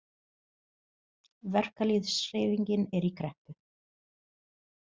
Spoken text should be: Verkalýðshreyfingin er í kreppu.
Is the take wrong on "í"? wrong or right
right